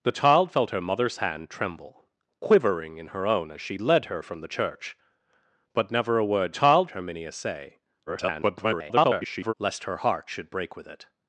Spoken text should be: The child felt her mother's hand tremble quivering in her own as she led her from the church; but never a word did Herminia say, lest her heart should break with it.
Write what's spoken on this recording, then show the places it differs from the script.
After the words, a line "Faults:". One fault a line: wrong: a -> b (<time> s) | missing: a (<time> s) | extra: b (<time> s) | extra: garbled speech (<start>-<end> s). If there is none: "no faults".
The child felt her mother's hand tremble quivering in her own as she led her from the church; but never a word child Herminia say, [garbled] lest her heart should break with it.
Faults:
wrong: did -> child (6.5 s)
extra: garbled speech (8.1-9.5 s)